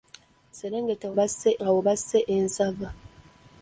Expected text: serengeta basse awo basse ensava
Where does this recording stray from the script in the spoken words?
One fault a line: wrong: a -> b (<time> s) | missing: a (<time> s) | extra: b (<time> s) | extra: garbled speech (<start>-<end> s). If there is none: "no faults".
no faults